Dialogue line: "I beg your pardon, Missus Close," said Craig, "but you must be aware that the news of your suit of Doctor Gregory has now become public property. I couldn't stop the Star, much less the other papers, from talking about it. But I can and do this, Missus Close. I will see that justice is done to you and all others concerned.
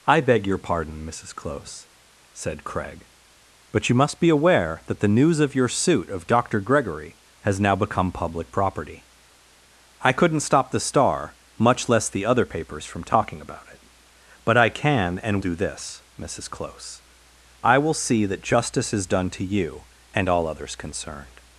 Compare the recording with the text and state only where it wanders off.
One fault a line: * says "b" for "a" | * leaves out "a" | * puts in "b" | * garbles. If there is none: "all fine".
all fine